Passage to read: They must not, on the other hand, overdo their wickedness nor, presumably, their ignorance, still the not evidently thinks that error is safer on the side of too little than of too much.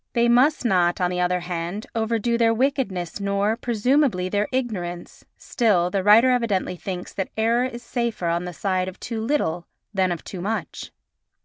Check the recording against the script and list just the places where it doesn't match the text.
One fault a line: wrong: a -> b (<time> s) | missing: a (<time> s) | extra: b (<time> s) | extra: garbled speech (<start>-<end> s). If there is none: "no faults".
wrong: not -> writer (6.0 s)